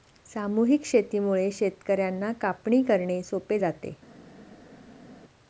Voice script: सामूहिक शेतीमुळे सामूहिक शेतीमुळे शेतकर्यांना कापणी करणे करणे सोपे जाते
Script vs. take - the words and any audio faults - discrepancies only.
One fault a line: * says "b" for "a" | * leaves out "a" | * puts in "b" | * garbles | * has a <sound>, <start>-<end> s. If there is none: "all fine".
* leaves out "सामूहिक शेतीमुळे"
* leaves out "करणे"